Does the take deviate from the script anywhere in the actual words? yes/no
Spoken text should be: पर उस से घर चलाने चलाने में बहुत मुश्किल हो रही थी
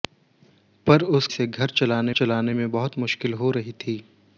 no